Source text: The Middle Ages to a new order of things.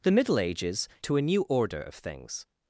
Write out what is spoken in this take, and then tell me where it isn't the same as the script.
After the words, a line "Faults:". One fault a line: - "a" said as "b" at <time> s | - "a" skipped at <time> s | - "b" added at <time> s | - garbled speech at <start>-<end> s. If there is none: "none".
The Middle Ages to a new order of things.
Faults:
none